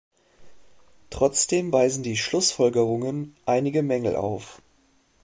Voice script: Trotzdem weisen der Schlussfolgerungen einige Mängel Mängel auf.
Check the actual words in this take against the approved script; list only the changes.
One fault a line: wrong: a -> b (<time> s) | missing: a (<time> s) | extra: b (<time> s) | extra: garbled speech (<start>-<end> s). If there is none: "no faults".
wrong: der -> die (2.0 s)
missing: Mängel (4.1 s)